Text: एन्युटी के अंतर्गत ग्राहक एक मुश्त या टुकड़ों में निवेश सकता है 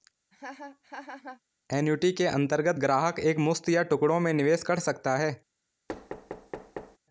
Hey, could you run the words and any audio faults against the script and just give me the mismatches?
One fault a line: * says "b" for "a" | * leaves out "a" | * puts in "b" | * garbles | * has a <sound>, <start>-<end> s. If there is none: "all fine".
* has a laugh, 0.3-1.4 s
* puts in "कर"
* has a thud, 5.9-7.0 s